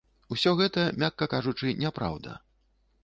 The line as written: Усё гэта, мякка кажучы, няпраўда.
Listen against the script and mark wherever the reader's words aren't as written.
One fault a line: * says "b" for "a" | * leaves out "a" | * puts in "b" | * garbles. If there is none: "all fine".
all fine